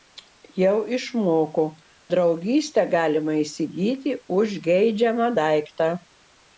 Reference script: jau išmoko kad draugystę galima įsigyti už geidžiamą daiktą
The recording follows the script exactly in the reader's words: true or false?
false